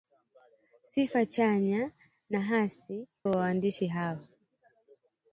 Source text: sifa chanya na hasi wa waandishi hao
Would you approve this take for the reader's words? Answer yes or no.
yes